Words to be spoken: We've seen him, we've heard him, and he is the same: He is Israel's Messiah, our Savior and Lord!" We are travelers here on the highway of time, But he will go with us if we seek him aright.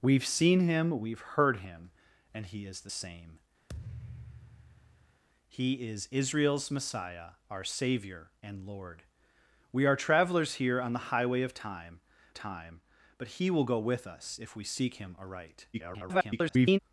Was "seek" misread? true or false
false